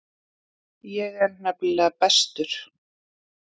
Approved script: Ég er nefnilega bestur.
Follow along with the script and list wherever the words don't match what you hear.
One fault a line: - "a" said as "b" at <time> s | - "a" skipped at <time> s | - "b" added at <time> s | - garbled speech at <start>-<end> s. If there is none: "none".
none